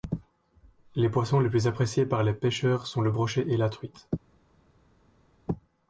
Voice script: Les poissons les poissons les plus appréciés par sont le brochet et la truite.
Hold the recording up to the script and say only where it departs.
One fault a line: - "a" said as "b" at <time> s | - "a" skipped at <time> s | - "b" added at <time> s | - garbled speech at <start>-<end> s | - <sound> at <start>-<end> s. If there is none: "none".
- "poissons les" skipped at 1.5 s
- "les pêcheurs" added at 2.2 s